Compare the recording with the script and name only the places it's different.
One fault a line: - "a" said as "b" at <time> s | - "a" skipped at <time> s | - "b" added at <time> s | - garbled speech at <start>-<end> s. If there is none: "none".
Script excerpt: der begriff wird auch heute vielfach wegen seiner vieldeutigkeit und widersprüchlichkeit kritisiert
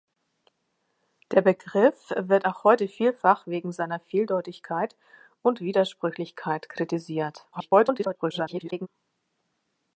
- garbled speech at 7.5-8.9 s